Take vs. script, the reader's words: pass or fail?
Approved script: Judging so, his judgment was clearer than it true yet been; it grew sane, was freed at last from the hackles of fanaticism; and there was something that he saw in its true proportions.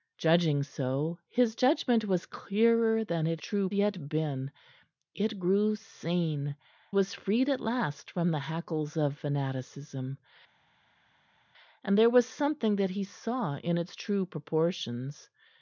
pass